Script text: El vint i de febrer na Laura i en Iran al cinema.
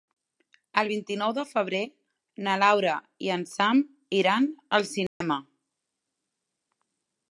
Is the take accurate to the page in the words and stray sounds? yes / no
no